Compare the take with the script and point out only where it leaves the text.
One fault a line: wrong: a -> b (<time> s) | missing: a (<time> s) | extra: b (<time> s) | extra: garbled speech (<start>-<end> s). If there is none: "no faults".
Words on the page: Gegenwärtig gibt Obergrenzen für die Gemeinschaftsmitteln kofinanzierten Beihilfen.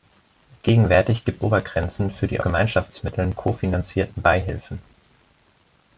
no faults